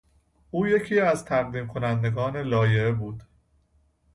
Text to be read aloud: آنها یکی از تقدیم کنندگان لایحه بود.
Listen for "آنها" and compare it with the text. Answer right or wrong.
wrong